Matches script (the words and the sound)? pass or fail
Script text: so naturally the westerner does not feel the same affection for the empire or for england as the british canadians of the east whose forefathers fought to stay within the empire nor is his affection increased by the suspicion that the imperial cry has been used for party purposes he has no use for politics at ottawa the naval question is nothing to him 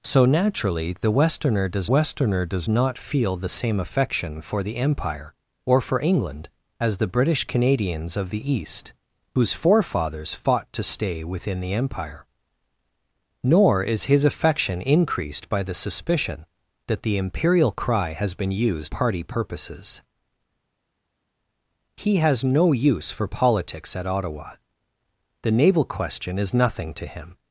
fail